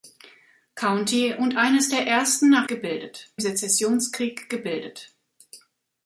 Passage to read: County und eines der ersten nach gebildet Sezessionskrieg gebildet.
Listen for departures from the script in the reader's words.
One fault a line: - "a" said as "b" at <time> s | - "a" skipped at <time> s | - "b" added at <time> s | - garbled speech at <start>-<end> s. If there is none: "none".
none